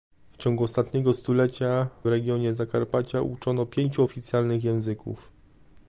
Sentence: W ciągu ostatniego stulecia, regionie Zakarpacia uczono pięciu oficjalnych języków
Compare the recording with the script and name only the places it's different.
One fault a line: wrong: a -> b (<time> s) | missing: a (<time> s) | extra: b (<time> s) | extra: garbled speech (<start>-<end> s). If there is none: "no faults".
no faults